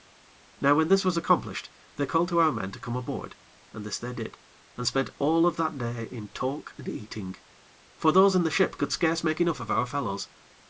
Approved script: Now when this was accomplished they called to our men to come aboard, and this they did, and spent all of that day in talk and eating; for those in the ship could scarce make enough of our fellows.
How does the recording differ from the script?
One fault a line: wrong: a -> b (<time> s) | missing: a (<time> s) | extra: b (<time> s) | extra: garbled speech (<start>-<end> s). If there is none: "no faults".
no faults